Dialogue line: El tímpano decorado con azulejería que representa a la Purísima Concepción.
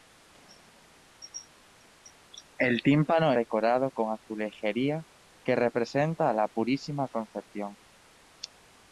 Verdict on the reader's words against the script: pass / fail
pass